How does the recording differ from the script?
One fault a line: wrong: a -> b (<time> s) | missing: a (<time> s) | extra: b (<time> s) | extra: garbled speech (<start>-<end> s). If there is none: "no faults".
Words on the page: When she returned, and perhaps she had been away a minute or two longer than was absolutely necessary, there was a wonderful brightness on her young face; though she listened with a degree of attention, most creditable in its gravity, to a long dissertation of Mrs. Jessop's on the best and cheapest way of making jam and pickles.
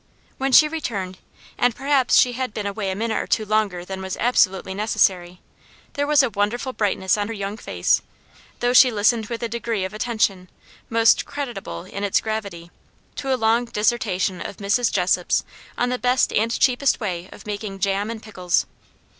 no faults